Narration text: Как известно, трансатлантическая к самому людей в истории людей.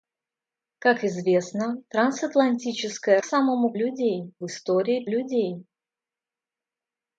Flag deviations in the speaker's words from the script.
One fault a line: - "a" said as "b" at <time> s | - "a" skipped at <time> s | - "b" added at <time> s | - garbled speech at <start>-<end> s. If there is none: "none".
none